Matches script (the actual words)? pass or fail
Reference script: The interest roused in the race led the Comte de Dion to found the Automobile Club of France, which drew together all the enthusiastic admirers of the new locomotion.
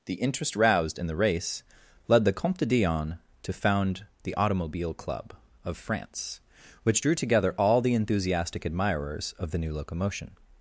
pass